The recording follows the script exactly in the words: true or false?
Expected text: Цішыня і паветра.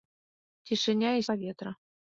true